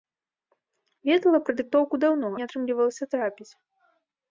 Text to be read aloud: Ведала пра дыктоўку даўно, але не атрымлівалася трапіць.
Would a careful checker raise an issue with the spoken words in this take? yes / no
yes